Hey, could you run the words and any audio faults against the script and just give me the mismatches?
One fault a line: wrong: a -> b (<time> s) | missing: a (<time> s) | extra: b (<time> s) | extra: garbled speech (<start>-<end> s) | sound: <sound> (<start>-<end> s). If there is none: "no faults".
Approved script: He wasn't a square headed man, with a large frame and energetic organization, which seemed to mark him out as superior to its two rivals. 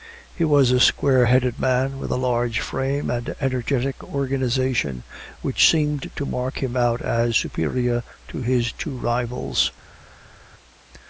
wrong: wasn't -> was (0.5 s)
wrong: its -> his (8.4 s)